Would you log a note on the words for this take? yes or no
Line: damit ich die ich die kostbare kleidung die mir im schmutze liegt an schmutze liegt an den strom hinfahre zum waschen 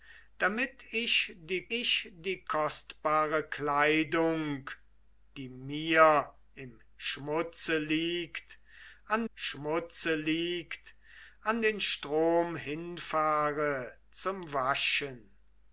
no